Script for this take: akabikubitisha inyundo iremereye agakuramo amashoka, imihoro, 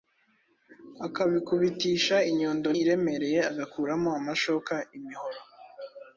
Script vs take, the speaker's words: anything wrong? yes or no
no